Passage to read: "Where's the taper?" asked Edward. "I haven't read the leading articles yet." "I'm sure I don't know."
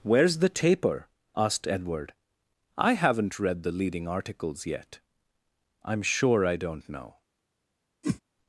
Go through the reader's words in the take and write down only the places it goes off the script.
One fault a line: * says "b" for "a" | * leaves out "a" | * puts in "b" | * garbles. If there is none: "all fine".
all fine